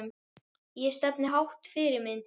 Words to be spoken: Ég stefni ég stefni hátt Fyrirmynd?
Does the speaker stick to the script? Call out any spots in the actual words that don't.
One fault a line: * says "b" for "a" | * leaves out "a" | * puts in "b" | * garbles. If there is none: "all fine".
* leaves out "ég stefni"